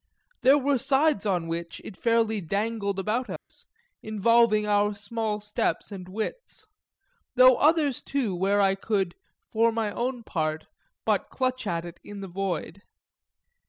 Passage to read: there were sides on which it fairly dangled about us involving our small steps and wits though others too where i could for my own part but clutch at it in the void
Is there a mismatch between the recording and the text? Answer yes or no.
no